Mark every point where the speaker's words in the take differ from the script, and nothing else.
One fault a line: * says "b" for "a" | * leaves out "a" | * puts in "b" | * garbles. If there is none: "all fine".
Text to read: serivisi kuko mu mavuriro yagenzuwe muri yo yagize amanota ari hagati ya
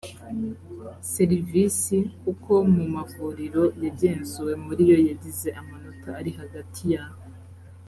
all fine